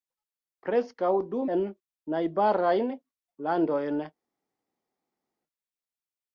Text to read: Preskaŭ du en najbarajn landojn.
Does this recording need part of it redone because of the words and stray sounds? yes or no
no